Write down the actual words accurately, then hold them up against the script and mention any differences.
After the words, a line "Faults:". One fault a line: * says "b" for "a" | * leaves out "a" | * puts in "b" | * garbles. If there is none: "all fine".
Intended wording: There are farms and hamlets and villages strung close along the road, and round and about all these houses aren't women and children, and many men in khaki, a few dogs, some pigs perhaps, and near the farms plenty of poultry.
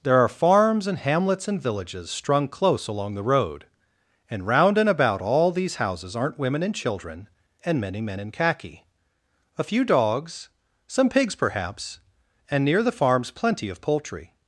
There are farms and hamlets and villages strung close along the road, and round and about all these houses aren't women and children, and many men in khaki, a few dogs, some pigs perhaps, and near the farms plenty of poultry.
Faults:
all fine